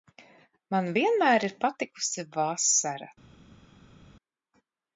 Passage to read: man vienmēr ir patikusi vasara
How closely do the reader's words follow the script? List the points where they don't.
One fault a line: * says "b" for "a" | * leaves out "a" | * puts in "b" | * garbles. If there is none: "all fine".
all fine